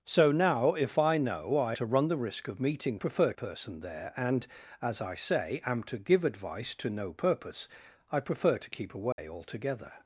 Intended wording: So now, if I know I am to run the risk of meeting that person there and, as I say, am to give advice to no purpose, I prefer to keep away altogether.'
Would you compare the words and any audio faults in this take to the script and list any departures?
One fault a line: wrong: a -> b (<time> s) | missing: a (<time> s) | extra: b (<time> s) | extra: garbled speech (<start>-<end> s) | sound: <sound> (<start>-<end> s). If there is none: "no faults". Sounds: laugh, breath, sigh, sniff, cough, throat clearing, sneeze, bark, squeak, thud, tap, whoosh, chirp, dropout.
missing: am (1.8 s)
wrong: that -> prefer (3.0 s)
sound: dropout (9.1-9.2 s)